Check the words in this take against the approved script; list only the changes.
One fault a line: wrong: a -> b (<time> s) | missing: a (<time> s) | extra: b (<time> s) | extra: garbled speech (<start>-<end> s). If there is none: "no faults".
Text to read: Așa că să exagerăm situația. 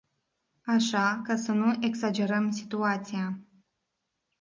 extra: nu (1.5 s)